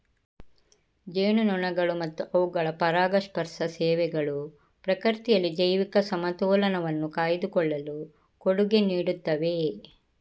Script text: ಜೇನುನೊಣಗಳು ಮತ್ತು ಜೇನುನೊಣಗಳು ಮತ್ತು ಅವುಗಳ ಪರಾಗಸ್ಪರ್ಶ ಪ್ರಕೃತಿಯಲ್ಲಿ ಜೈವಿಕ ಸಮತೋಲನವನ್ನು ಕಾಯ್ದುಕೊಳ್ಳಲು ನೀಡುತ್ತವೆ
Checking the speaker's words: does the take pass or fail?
fail